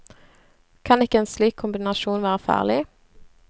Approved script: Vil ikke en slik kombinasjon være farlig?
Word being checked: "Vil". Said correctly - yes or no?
no